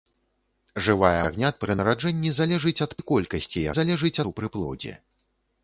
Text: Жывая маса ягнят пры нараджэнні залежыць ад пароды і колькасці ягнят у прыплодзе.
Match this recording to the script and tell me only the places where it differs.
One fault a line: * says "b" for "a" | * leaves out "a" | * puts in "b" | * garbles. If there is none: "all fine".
* leaves out "маса"
* leaves out "пароды"
* says "залежыць" for "ягнят"